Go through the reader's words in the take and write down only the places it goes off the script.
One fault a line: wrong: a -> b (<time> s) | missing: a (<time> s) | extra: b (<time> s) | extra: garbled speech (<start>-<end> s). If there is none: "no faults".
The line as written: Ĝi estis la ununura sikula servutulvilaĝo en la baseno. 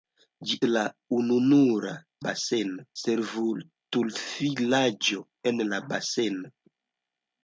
missing: estis (0.6 s)
wrong: sikula -> baseno (2.3 s)